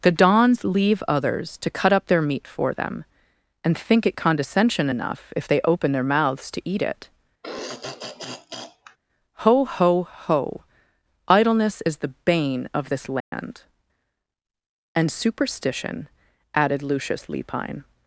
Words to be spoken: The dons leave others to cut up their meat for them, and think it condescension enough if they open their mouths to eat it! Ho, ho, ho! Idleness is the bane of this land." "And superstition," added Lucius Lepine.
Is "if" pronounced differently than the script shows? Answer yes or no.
no